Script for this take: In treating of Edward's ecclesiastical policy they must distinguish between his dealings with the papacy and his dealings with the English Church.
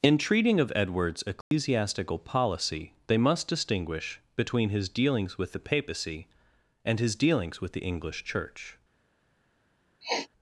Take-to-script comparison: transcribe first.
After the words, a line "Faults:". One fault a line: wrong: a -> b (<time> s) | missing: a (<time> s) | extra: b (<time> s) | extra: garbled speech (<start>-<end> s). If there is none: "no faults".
In treating of Edward's ecclesiastical policy they must distinguish between his dealings with the papacy and his dealings with the English Church.
Faults:
no faults